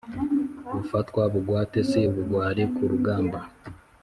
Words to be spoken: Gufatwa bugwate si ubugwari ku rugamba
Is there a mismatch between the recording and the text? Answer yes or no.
no